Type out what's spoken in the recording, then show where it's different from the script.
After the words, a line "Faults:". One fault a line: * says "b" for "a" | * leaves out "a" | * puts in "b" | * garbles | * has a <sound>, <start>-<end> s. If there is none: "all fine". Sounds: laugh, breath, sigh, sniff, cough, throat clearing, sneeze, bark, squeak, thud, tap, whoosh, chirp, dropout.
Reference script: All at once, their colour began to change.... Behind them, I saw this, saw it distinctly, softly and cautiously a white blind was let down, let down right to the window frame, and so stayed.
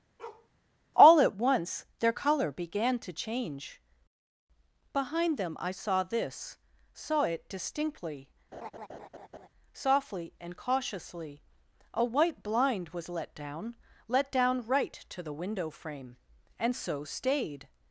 All at once, their colour began to change.... Behind them, I saw this, saw it distinctly, softly and cautiously a white blind was let down, let down right to the window frame, and so stayed.
Faults:
* has a bark, 0.2-0.5 s
* has a laugh, 8.5-9.5 s